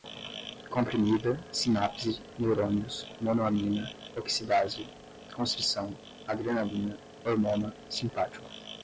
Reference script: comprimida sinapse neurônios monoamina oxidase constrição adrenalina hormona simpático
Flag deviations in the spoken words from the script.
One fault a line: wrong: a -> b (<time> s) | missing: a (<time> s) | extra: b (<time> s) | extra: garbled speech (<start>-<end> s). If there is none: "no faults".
no faults